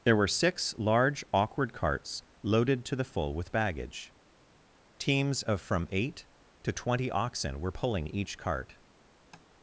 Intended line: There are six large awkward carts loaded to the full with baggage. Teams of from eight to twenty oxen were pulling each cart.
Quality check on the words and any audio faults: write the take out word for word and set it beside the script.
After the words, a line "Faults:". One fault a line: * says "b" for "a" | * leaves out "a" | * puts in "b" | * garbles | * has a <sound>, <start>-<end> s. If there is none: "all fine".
There were six large awkward carts loaded to the full with baggage. Teams of from eight to twenty oxen were pulling each cart.
Faults:
* says "were" for "are"
* has a tap, 9.3-9.5 s